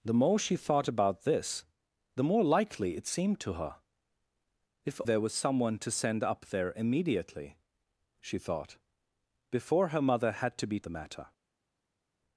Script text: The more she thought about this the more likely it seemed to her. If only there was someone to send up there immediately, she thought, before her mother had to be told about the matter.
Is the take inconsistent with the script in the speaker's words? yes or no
yes